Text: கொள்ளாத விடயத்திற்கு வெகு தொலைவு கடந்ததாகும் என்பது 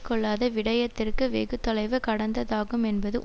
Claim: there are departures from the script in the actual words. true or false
false